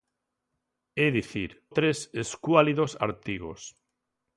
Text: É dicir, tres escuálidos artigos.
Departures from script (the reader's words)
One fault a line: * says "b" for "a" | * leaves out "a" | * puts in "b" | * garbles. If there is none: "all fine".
all fine